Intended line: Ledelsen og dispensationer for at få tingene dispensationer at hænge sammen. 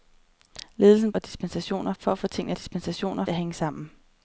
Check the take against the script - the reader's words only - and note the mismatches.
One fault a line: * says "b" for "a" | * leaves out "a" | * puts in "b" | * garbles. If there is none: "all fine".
all fine